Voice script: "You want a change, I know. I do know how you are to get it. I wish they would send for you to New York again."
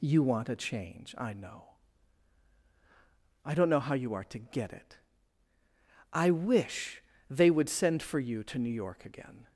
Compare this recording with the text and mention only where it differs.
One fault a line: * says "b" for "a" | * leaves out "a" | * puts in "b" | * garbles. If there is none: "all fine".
* says "don't" for "do"